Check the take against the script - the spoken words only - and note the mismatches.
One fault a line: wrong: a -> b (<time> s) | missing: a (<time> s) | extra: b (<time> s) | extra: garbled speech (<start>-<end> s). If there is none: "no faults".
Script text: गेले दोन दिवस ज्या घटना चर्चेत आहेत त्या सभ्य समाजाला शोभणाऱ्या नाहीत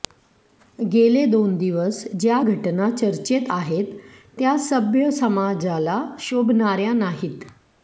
no faults